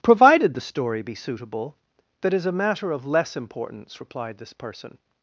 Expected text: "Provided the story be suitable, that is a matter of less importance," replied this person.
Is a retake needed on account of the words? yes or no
no